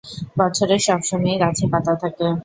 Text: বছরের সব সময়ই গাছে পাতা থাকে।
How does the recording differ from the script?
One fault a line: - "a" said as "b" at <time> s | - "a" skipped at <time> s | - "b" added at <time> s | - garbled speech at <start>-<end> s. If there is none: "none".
none